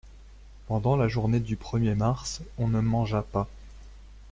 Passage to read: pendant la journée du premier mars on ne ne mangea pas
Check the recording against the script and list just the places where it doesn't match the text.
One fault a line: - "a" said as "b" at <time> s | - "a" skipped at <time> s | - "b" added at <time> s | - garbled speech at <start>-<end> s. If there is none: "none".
- "ne" skipped at 2.8 s